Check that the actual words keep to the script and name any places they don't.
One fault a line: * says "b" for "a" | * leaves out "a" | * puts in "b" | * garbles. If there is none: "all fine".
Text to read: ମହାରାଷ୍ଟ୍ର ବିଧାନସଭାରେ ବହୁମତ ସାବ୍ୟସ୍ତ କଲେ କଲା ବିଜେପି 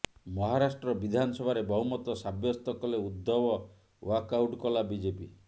* puts in "ଉଦ୍ଧବ ୱାକଆଉଟ୍"